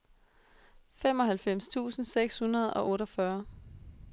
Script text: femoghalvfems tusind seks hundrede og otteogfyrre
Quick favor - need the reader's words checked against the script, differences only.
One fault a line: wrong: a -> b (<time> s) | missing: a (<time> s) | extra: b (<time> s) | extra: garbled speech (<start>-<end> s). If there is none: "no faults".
no faults